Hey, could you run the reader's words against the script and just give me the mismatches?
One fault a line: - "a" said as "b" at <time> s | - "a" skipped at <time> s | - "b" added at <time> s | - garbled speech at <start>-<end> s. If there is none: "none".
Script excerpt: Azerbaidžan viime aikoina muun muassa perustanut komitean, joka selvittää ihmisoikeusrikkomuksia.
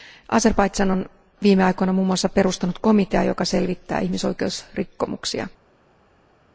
- "on" added at 0.9 s